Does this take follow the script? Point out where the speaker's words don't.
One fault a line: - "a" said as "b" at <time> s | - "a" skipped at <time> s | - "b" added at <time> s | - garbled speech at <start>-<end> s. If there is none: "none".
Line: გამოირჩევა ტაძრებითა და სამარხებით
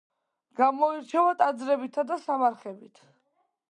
none